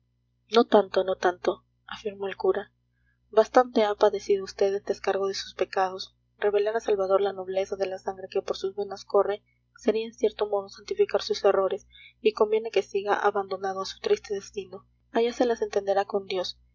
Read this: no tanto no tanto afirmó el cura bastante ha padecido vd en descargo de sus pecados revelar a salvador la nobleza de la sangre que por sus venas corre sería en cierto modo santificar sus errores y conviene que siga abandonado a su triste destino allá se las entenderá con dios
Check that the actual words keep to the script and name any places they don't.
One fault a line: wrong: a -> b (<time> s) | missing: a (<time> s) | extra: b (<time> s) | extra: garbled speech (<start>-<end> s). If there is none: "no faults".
no faults